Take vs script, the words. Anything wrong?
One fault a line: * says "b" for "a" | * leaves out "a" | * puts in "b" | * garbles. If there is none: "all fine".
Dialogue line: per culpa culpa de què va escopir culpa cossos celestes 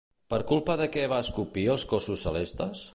* leaves out "culpa"
* says "els" for "culpa"